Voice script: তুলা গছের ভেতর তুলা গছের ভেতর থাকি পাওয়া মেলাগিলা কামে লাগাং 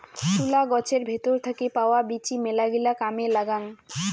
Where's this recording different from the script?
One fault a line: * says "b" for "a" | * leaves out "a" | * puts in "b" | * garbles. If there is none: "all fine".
* leaves out "তুলা গছের ভেতর"
* puts in "বীচি"